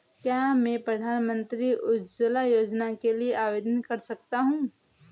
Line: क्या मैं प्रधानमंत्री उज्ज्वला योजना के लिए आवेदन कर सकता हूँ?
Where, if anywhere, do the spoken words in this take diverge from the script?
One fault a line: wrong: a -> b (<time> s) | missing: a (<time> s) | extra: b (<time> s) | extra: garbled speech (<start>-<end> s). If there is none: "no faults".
no faults